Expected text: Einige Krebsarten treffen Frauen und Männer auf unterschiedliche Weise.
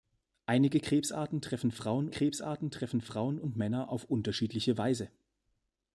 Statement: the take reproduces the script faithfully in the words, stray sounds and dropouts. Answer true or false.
false